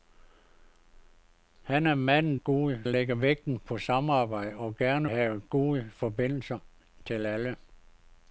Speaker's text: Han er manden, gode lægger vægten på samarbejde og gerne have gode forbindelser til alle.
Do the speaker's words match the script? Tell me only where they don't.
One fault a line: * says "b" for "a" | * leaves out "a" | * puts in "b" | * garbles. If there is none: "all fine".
all fine